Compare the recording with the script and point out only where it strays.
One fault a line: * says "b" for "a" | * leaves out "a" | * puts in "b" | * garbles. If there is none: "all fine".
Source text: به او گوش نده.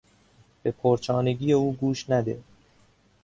* puts in "پرچانگی"